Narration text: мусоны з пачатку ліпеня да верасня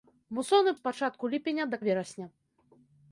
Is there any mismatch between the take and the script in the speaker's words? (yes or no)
no